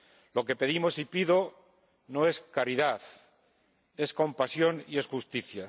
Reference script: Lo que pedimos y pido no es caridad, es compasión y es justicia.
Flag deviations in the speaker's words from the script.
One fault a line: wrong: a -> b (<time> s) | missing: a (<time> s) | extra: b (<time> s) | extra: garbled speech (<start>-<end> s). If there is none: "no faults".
no faults